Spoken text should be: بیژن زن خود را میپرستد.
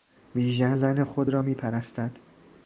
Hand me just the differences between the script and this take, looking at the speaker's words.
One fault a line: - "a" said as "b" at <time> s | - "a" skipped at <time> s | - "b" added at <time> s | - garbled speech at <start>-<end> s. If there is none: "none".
none